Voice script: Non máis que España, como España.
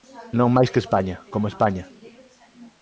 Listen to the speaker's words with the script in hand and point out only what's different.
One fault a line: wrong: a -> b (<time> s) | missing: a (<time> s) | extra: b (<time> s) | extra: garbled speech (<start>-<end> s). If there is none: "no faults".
no faults